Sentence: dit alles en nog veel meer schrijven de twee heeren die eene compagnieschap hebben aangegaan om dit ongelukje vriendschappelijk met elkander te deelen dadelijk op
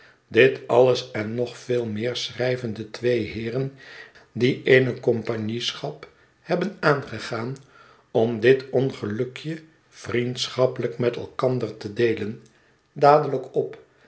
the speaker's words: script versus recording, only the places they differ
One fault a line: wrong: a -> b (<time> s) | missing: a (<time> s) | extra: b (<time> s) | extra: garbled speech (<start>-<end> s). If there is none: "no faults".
no faults